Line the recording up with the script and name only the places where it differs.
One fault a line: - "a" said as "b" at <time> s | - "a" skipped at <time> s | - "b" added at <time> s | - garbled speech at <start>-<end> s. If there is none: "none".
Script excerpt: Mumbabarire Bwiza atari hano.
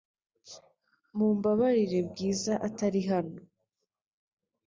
none